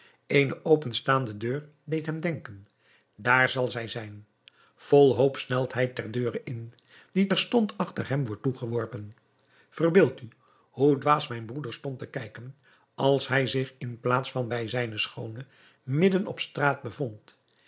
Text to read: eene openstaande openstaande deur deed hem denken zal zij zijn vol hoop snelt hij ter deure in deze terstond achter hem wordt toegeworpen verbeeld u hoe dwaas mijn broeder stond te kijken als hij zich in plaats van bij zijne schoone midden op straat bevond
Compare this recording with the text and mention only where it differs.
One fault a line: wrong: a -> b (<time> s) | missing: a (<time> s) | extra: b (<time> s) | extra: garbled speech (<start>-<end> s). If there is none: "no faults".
missing: openstaande (1.4 s)
extra: daar (3.1 s)
wrong: deze -> die (7.1 s)